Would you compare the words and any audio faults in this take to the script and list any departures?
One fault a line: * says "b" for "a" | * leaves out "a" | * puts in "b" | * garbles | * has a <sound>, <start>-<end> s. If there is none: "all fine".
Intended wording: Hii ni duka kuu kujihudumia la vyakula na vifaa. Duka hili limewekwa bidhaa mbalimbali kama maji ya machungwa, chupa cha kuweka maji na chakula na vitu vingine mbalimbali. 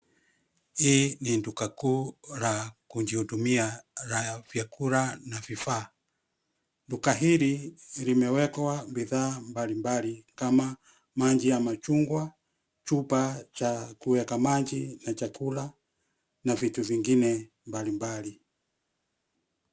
* puts in "la"